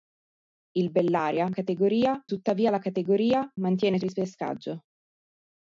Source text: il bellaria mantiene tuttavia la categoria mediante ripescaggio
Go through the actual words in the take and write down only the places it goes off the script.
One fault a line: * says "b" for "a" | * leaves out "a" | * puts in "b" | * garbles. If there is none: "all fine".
* says "categoria" for "mantiene"
* says "mantiene" for "mediante"